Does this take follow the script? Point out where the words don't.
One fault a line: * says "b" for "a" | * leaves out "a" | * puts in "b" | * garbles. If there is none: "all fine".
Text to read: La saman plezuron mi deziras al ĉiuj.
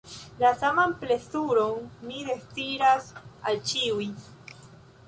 all fine